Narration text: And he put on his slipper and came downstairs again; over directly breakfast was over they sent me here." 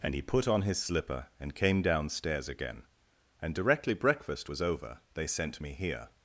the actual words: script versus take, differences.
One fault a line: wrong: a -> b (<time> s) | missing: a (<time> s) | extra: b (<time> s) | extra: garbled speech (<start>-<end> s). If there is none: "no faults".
wrong: over -> and (3.4 s)